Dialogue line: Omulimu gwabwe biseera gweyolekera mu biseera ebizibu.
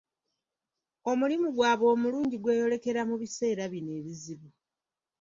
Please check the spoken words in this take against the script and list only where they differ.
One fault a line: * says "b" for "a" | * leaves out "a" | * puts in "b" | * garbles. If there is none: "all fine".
* says "omulungi" for "biseera"
* puts in "bino"